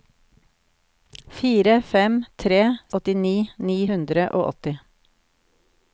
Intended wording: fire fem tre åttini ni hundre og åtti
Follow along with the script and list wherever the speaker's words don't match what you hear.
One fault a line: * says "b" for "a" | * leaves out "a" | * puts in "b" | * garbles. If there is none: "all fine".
all fine